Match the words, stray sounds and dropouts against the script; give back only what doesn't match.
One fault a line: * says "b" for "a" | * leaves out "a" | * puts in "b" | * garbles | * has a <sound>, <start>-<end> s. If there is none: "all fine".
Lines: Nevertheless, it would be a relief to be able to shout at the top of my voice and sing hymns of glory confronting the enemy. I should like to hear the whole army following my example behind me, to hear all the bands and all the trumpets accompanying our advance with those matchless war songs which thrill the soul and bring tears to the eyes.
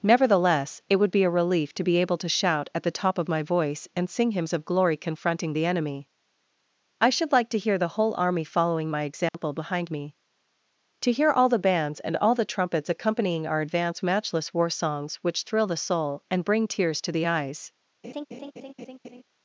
* has a dropout, 9.3-9.3 s
* leaves out "with those"
* has a laugh, 18.0-19.2 s